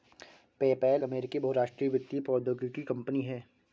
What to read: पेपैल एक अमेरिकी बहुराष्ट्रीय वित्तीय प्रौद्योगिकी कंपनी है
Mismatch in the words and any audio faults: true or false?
true